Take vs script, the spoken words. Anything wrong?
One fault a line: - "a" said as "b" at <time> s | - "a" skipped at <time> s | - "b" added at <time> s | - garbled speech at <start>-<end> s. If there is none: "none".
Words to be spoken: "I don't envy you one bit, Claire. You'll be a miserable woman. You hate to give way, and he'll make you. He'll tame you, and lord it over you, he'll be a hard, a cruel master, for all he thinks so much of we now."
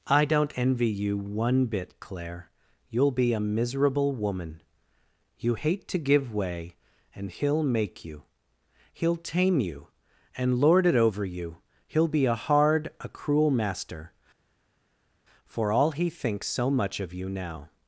- "we" said as "you" at 17.1 s